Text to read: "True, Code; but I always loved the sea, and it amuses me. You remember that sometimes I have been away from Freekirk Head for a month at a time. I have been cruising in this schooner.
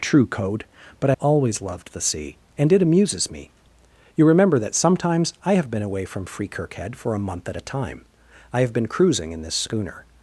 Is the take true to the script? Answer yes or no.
yes